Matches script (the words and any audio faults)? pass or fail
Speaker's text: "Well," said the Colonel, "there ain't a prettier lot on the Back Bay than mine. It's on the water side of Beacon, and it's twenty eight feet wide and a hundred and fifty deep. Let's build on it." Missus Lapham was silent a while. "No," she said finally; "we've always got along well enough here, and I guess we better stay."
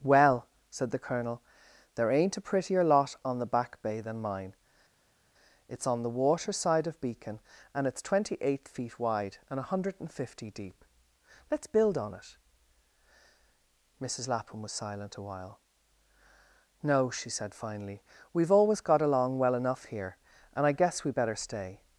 pass